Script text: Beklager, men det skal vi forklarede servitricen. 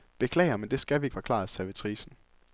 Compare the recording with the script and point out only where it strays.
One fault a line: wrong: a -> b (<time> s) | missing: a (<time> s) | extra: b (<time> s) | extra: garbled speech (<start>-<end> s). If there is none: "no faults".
no faults